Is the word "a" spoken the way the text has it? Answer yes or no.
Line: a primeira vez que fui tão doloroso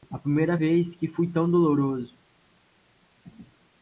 yes